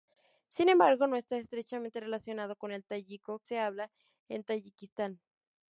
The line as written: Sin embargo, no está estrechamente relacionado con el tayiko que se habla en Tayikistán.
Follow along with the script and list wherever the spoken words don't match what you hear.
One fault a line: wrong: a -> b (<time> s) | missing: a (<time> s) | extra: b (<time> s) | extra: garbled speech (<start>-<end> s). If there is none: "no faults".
missing: que (3.4 s)